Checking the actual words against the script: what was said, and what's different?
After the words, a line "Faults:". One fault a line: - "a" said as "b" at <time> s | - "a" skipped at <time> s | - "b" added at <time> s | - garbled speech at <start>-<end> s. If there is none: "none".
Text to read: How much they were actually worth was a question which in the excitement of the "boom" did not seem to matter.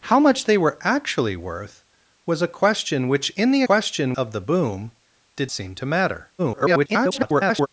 How much they were actually worth was a question which in the question of the "boom" did seem to matter. [garbled]
Faults:
- "excitement" said as "question" at 3.6 s
- "not" skipped at 5.5 s
- garbled speech at 6.4-7.7 s